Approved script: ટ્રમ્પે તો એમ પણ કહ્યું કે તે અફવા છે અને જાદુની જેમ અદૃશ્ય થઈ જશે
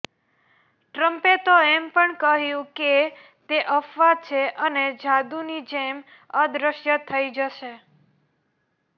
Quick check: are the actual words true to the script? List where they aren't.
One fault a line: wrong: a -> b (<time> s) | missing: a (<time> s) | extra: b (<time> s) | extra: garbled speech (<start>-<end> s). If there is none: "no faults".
no faults